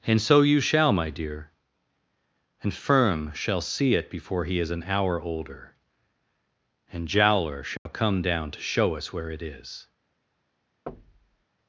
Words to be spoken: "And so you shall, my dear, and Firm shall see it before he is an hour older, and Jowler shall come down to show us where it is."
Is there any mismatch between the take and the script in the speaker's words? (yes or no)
no